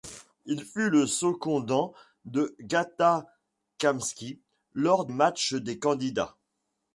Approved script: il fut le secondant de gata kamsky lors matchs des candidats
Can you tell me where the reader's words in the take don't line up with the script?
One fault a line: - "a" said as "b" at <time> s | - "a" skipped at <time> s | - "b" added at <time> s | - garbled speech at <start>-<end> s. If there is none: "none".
none